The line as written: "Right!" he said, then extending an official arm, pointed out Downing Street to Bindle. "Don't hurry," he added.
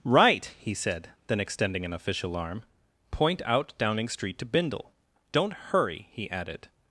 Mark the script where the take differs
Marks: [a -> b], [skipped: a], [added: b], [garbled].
"Right!" he said, then extending an official arm, [pointed -> point] out Downing Street to Bindle. "Don't hurry," he added.